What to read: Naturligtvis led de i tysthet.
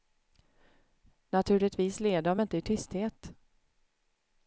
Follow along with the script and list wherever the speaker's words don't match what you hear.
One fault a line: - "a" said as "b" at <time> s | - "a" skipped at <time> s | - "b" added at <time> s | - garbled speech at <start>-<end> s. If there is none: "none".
- "inte" added at 2.4 s